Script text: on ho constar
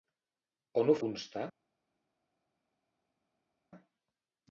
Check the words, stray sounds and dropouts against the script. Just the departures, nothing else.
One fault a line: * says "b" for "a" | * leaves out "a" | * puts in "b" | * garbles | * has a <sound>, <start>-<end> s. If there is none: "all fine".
all fine